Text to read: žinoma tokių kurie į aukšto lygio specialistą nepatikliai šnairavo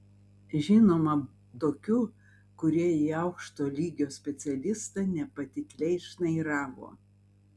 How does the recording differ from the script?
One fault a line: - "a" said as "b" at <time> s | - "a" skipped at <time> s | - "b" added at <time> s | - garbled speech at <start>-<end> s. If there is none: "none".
none